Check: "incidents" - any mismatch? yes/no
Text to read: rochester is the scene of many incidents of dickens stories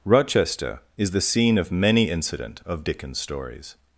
yes